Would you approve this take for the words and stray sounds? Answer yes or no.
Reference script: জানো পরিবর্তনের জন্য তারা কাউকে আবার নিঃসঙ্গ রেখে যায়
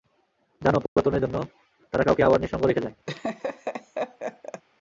no